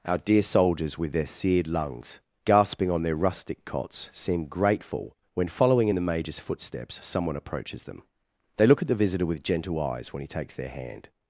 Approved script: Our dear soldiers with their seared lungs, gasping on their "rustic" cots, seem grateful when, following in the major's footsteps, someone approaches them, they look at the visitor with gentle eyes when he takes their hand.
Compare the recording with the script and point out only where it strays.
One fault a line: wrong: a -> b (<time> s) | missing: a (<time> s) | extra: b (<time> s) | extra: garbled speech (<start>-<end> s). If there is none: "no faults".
no faults